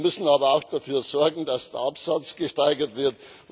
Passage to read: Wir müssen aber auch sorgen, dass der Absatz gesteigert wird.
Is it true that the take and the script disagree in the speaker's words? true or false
true